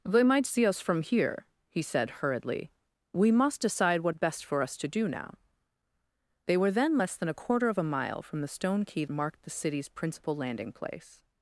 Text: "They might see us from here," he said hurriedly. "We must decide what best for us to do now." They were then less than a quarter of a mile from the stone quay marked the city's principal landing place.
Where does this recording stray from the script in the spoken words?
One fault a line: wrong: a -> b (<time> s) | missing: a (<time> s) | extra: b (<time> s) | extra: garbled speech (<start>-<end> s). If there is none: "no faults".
no faults